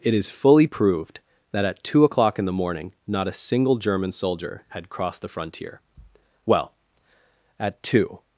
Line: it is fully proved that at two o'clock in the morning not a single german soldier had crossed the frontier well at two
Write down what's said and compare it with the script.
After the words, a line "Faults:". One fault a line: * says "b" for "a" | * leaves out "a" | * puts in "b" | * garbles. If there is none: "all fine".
it is fully proved that at two o'clock in the morning not a single german soldier had crossed the frontier well at two
Faults:
all fine